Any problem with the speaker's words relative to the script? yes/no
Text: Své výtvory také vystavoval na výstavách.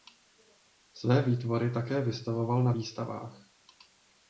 no